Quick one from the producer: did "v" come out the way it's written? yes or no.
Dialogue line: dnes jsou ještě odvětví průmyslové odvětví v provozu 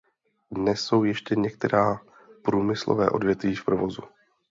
yes